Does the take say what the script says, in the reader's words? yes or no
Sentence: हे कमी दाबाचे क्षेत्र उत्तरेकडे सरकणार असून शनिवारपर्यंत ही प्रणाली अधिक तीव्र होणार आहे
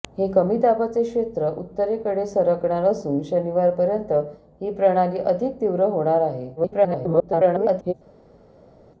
no